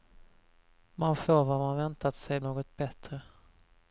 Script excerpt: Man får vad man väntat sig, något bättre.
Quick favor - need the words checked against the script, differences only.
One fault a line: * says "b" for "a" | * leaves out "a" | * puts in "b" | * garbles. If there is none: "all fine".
all fine